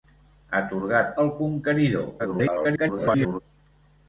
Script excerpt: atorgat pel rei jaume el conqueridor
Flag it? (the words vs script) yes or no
yes